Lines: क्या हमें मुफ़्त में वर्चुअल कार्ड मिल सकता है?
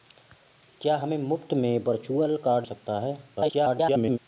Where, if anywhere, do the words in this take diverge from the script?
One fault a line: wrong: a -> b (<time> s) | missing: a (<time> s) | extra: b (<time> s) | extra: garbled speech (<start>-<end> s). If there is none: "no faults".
missing: मिल (2.7 s)
extra: garbled speech (3.4-4.2 s)